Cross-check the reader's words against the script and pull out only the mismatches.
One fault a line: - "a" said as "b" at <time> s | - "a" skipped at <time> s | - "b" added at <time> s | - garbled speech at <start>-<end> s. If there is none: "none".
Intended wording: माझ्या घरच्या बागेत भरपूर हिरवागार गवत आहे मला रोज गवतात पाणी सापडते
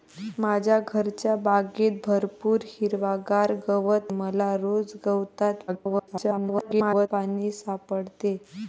- "आहे" skipped at 4.1 s
- garbled speech at 5.7-7.1 s